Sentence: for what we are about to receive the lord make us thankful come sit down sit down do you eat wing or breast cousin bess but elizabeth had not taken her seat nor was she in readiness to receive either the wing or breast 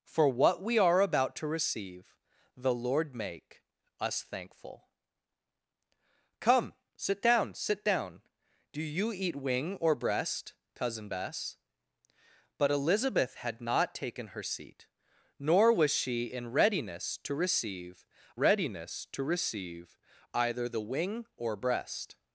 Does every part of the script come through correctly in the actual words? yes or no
no